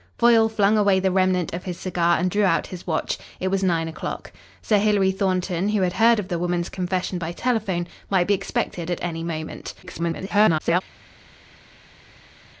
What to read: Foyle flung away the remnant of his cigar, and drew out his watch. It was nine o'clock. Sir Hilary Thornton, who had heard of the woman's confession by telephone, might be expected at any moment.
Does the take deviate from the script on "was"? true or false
false